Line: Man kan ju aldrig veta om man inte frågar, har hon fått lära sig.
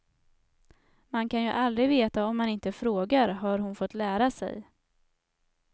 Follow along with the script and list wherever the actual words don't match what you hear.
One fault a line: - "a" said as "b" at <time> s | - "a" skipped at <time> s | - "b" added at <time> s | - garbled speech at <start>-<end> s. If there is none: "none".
none